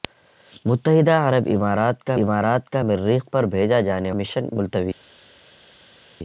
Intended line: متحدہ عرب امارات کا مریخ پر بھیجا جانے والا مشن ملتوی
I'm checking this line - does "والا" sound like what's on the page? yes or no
no